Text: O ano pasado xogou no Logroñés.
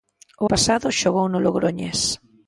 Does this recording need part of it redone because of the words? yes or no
yes